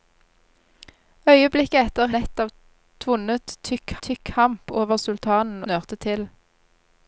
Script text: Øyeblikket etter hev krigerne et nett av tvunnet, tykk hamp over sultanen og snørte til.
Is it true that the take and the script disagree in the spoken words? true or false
true